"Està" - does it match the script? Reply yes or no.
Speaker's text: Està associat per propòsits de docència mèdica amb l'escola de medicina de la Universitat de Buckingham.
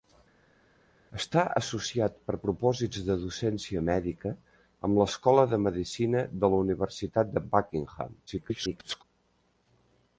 yes